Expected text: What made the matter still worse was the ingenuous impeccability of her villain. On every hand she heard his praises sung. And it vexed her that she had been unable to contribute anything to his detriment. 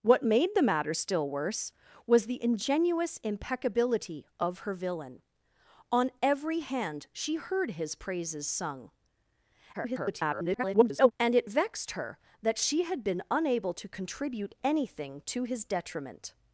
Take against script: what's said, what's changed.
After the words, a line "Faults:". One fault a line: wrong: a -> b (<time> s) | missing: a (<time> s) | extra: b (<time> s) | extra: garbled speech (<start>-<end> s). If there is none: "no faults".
What made the matter still worse was the ingenuous impeccability of her villain. On every hand she heard his praises sung. [garbled] And it vexed her that she had been unable to contribute anything to his detriment.
Faults:
extra: garbled speech (9.7-11.1 s)